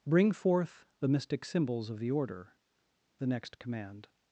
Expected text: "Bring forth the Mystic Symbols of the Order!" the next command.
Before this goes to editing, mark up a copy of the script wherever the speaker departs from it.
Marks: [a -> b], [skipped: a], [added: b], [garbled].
"Bring forth the Mystic Symbols of the Order!" the next command.